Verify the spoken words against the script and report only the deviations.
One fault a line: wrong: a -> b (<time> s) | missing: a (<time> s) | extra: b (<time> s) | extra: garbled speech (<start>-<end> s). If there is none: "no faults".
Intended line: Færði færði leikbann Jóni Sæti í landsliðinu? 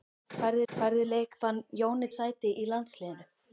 no faults